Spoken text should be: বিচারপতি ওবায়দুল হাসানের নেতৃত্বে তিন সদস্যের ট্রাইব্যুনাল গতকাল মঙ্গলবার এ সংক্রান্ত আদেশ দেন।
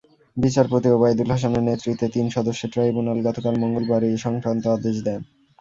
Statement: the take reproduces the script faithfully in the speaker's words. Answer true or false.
true